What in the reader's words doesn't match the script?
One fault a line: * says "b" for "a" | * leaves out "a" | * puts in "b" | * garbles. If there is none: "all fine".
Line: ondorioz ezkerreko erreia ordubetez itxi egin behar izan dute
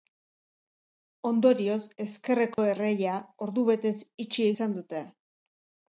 * leaves out "egin behar"